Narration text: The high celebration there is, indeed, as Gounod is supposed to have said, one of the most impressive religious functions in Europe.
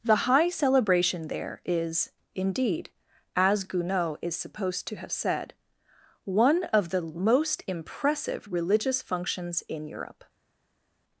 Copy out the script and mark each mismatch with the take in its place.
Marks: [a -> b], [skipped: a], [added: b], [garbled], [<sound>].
The high celebration there is, indeed, as Gounod is supposed to have said, one of the most impressive religious functions in Europe.